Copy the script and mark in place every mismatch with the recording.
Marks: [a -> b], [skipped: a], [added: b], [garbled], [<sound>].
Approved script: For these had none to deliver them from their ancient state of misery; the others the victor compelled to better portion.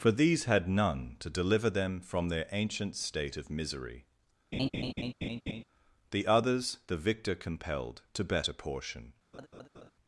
For these had none to deliver them from their ancient state of misery; [laugh] the others the victor compelled to better portion. [laugh]